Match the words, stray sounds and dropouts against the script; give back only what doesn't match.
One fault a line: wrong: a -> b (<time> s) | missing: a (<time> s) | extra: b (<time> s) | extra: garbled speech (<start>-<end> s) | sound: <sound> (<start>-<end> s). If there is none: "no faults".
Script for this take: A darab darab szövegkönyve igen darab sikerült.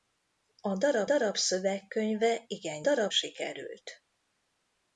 no faults